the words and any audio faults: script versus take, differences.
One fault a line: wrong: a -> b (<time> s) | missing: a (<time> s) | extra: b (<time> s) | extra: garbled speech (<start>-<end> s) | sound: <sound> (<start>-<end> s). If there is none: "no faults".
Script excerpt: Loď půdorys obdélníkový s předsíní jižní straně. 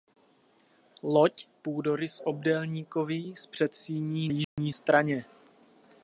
sound: dropout (4.4-4.6 s)